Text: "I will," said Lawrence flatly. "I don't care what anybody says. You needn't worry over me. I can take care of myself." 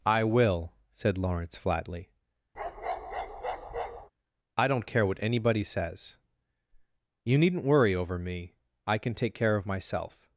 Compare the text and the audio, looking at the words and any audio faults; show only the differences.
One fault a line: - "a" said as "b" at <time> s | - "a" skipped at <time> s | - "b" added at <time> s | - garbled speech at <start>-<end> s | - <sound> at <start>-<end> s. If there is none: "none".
- bark at 2.5-4.1 s